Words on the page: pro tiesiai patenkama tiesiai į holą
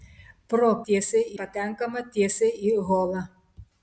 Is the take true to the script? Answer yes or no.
yes